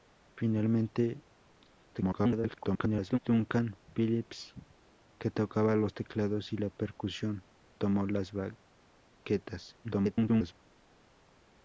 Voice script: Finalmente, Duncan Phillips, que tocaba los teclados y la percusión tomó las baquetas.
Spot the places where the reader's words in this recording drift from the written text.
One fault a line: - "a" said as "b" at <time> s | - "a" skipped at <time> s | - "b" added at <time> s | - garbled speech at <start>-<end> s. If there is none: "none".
- garbled speech at 1.9-3.2 s
- garbled speech at 9.8-10.5 s